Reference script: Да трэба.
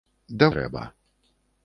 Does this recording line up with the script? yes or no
yes